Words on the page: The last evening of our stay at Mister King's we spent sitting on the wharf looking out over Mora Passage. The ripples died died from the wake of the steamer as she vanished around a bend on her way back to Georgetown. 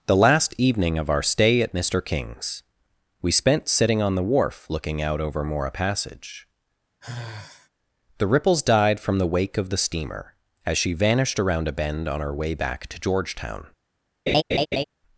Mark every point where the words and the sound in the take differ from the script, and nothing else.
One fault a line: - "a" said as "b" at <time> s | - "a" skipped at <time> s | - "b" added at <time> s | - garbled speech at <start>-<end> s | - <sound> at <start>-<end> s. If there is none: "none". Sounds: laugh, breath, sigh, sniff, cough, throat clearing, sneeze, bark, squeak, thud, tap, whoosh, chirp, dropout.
- sigh at 7.0-7.7 s
- "died" skipped at 9.0 s
- laugh at 14.3-14.8 s